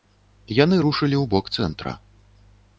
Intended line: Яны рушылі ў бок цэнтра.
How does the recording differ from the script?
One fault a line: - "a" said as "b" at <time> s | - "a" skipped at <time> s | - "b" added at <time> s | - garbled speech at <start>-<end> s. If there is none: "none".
none